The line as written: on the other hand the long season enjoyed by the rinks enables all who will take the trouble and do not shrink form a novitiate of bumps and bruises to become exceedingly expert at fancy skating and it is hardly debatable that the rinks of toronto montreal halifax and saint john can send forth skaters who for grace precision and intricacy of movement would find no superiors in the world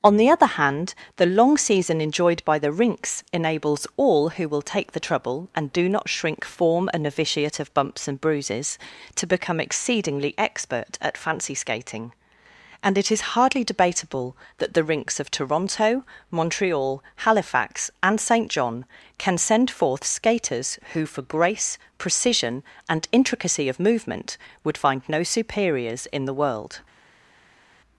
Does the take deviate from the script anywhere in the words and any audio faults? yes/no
no